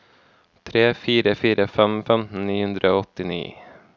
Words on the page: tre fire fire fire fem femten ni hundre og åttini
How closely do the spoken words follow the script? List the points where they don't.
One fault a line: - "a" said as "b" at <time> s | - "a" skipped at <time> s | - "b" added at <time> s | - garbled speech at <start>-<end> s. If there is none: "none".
- "fire" skipped at 1.7 s